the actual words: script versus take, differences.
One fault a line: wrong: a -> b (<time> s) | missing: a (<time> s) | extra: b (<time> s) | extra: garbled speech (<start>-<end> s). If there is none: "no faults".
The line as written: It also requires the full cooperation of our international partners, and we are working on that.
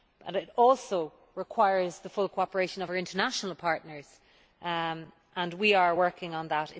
no faults